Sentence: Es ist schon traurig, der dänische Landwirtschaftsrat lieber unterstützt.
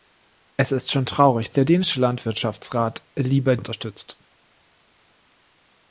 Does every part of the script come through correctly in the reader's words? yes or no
yes